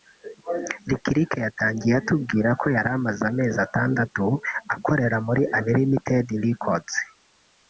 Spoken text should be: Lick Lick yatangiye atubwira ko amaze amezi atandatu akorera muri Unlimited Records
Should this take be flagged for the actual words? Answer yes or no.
yes